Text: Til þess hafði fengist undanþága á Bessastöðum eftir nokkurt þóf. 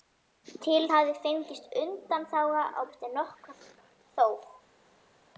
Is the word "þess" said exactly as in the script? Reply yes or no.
no